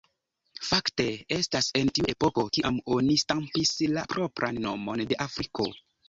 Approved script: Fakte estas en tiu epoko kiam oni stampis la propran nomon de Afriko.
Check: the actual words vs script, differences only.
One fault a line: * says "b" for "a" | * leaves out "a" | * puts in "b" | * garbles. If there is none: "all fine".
all fine